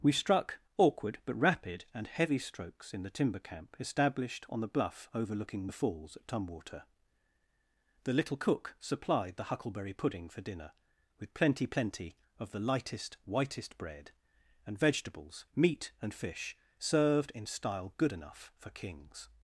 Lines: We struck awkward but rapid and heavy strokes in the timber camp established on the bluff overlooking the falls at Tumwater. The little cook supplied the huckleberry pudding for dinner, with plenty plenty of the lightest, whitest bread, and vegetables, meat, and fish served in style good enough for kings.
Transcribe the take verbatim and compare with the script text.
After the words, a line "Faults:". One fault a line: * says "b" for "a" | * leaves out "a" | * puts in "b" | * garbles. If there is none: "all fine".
We struck awkward but rapid and heavy strokes in the timber camp established on the bluff overlooking the falls at Tumwater. The little cook supplied the huckleberry pudding for dinner, with plenty plenty of the lightest, whitest bread, and vegetables, meat, and fish served in style good enough for kings.
Faults:
all fine